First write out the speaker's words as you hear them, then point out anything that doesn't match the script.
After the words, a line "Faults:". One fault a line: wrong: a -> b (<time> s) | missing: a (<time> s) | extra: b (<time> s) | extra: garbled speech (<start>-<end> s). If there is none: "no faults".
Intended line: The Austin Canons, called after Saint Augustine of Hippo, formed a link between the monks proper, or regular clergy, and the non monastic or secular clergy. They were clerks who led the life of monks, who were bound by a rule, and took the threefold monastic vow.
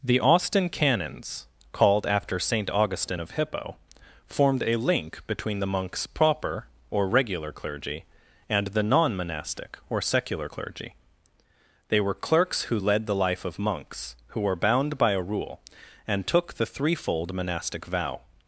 The Austin Canons, called after Saint Augustine of Hippo, formed a link between the monks proper, or regular clergy, and the non monastic or secular clergy. They were clerks who led the life of monks, who were bound by a rule, and took the threefold monastic vow.
Faults:
no faults